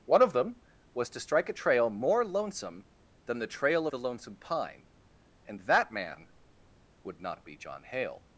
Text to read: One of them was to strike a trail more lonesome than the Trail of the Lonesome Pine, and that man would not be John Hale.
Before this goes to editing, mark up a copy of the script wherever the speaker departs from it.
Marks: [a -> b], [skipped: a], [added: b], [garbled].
One of them was to strike a trail more lonesome than the Trail [skipped: of] the Lonesome Pine, and that man would not be John Hale.